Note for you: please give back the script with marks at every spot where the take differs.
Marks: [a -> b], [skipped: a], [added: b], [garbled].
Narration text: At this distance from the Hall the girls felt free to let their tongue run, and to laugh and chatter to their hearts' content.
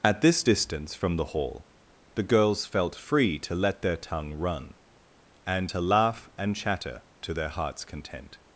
At this distance from the Hall the girls felt free to let their tongue run, and to laugh and chatter to their hearts' content.